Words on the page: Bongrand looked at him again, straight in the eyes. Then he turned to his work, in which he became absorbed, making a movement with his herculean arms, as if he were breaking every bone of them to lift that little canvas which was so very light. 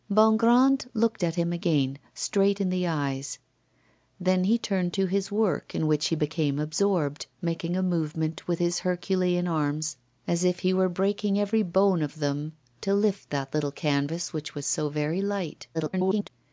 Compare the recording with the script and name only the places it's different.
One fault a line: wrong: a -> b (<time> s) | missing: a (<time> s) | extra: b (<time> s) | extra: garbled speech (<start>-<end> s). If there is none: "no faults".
extra: garbled speech (15.7-16.3 s)